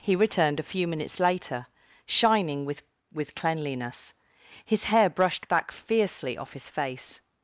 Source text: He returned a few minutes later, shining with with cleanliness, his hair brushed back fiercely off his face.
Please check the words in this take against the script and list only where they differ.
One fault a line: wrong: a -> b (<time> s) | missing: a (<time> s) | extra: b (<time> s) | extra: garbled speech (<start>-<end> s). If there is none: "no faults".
no faults